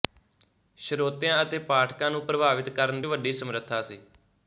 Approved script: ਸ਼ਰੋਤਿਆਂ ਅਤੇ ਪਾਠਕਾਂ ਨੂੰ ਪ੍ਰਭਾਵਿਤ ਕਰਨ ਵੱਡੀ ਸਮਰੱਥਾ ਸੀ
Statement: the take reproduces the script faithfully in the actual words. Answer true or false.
true